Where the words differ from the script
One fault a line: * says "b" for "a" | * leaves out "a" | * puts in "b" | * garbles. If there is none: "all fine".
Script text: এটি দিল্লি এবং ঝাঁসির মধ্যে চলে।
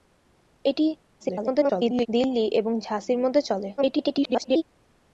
* garbles
* garbles